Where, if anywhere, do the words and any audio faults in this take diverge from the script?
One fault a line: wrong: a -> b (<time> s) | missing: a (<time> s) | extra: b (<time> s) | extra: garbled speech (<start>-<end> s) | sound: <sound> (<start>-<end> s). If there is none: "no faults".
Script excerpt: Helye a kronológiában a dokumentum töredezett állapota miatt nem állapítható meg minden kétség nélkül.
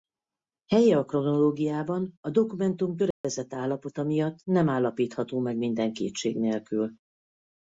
sound: dropout (3.1-3.2 s)